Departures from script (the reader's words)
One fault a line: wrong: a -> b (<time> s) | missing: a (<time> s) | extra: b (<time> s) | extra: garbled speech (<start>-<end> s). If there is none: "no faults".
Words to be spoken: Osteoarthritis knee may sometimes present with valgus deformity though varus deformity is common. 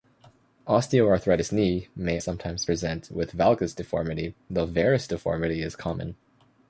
no faults